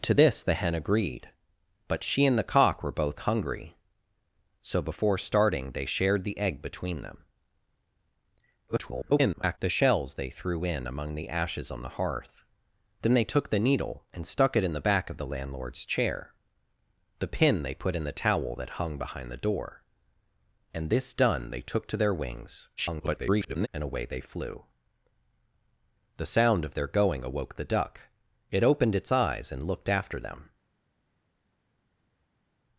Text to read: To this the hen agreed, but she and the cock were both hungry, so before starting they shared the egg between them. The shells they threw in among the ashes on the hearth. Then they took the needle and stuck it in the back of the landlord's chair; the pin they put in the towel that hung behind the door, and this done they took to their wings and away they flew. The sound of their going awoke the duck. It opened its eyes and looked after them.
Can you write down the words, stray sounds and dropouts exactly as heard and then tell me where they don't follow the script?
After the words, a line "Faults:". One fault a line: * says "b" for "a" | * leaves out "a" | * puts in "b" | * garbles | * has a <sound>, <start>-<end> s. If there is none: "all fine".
To this the hen agreed, but she and the cock were both hungry, so before starting they shared the egg between them. [garbled] The shells they threw in among the ashes on the hearth. Then they took the needle and stuck it in the back of the landlord's chair; the pin they put in the towel that hung behind the door, and this done they took to their wings [garbled] and away they flew. The sound of their going awoke the duck. It opened its eyes and looked after them.
Faults:
* garbles
* garbles